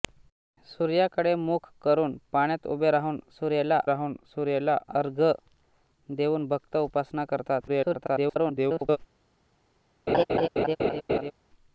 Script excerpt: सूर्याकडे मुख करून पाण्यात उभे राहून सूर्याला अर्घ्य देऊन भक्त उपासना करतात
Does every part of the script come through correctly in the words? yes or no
no